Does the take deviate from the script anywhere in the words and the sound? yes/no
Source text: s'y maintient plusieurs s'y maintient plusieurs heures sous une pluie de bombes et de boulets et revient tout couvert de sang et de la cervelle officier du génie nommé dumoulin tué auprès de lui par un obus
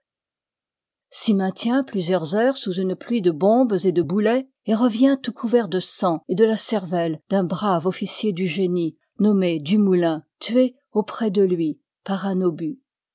yes